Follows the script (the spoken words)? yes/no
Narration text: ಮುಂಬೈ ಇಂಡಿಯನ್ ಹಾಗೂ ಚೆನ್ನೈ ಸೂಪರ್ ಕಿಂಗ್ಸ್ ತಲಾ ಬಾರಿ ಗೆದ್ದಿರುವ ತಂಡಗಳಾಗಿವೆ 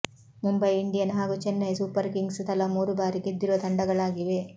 no